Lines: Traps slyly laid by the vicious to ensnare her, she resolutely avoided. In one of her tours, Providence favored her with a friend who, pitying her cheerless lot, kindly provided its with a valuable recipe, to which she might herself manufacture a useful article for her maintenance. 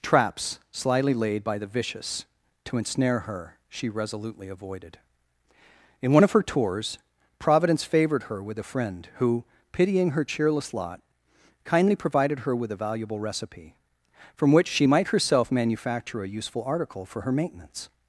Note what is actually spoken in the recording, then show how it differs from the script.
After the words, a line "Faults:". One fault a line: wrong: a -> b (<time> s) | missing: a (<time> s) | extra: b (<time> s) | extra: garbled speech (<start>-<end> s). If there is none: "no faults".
Traps slyly laid by the vicious to ensnare her, she resolutely avoided. In one of her tours, Providence favored her with a friend who, pitying her cheerless lot, kindly provided her with a valuable recipe, from which she might herself manufacture a useful article for her maintenance.
Faults:
wrong: its -> her (12.4 s)
wrong: to -> from (14.3 s)